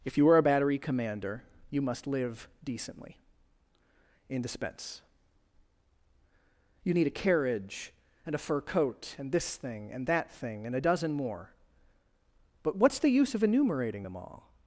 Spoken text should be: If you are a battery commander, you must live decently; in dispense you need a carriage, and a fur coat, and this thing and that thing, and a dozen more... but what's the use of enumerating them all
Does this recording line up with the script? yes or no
yes